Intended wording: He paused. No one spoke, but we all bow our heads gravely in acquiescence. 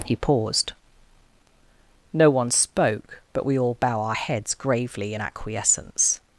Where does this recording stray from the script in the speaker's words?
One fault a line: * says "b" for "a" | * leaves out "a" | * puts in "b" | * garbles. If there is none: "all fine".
all fine